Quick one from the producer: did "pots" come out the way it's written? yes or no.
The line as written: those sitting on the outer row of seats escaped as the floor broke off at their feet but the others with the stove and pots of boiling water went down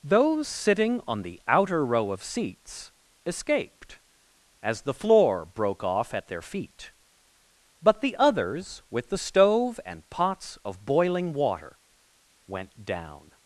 yes